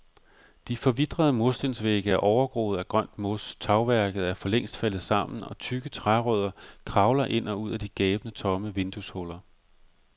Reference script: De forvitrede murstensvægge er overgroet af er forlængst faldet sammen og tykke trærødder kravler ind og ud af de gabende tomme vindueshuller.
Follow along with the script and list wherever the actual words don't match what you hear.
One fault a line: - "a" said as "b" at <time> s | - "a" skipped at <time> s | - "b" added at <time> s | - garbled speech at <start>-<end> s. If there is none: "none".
- "grønt mos tagværket" added at 2.9 s